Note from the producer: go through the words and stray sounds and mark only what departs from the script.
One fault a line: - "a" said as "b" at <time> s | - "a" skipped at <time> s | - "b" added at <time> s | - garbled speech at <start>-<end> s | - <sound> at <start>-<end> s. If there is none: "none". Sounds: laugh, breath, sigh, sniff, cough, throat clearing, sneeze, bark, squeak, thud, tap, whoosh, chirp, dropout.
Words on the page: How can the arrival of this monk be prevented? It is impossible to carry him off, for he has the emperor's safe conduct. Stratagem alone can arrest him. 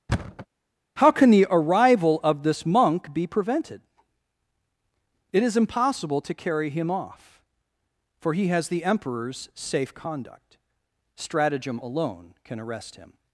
- thud at 0.1-0.5 s